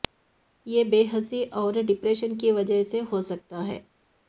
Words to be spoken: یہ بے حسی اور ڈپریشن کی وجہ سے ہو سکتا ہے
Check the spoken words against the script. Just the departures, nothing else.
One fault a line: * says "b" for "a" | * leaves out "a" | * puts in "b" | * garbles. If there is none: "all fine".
all fine